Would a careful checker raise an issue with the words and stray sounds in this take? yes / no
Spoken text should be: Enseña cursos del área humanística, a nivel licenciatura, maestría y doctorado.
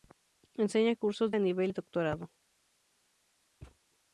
yes